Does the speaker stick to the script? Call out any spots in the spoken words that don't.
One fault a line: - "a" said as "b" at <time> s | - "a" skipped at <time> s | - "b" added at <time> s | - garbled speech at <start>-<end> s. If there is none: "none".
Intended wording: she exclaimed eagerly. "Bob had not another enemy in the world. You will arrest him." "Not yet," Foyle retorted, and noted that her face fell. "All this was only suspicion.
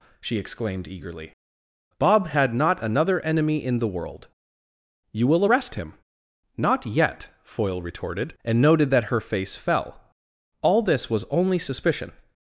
none